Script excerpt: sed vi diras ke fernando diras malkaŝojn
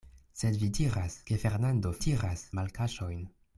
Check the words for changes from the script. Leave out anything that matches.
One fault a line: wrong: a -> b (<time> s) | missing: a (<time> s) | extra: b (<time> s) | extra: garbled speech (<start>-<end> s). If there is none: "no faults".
no faults